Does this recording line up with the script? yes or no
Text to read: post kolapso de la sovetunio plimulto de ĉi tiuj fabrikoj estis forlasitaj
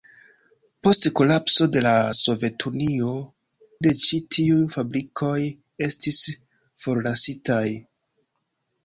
no